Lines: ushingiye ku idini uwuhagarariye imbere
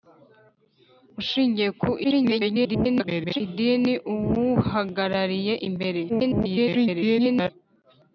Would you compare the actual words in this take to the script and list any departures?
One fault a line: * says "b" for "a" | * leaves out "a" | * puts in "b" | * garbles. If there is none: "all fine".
* garbles
* garbles